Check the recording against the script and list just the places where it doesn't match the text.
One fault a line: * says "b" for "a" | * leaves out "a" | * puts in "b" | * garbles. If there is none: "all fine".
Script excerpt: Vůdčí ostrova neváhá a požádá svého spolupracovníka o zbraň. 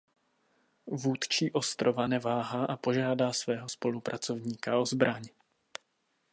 all fine